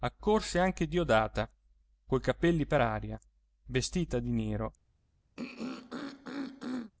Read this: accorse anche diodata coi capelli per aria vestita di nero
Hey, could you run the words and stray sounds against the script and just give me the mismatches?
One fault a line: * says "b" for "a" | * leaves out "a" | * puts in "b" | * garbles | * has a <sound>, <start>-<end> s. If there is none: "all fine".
* has a throat clearing, 5.4-6.9 s